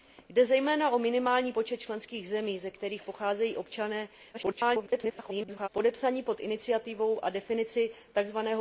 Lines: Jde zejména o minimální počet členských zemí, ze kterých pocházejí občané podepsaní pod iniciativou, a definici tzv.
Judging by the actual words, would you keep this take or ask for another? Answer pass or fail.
fail